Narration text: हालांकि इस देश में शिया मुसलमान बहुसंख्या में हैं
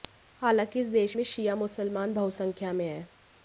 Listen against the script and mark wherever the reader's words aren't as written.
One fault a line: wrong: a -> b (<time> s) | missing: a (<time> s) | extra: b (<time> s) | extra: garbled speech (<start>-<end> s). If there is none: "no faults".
no faults